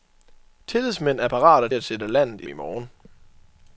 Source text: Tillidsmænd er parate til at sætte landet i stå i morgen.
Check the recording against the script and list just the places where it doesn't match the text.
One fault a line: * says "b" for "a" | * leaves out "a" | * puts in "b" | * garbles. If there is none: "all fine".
* leaves out "til"
* leaves out "stå"